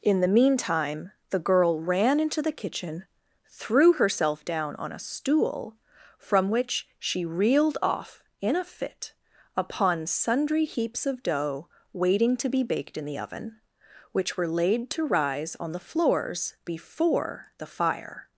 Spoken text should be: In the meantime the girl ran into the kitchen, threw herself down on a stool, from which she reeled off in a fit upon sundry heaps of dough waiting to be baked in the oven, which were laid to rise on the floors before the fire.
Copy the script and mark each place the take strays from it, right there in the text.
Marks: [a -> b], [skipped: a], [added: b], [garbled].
In the meantime the girl ran into the kitchen, threw herself down on a stool, from which she reeled off in a fit upon sundry heaps of dough waiting to be baked in the oven, which were laid to rise on the floors before the fire.